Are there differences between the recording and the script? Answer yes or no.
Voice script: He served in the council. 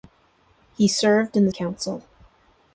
no